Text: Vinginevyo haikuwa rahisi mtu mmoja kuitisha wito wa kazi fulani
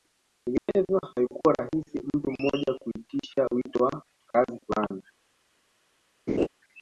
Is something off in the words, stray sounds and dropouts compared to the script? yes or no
yes